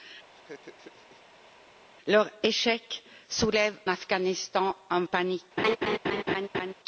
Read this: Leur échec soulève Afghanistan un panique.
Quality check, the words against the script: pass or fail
pass